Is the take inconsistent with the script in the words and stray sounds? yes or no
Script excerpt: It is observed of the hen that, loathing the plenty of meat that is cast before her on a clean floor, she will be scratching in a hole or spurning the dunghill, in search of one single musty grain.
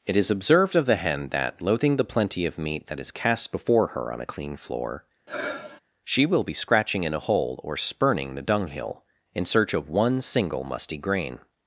yes